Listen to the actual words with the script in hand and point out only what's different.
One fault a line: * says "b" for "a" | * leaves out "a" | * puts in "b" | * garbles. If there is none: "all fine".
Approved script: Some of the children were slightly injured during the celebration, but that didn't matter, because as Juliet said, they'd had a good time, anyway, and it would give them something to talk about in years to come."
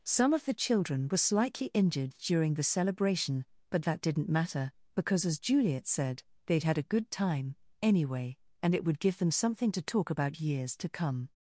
* leaves out "in"